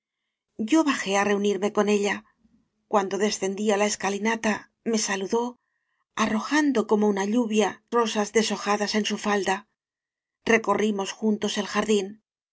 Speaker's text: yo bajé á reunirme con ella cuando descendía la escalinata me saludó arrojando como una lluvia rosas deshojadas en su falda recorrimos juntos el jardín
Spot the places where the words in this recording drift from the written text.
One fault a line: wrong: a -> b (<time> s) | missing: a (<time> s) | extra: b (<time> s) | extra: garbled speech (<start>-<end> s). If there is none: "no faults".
no faults